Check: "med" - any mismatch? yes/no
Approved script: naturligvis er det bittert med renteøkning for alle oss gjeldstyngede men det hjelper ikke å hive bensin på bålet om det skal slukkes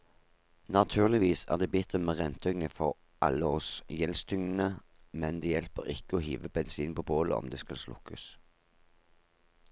no